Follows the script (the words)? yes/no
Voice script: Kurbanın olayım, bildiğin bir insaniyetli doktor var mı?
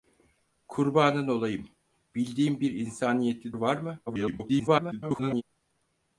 no